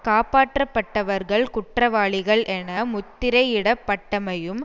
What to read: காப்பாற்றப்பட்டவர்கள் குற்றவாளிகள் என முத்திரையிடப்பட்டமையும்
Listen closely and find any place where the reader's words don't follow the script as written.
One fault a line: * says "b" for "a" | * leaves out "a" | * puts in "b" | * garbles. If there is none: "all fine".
all fine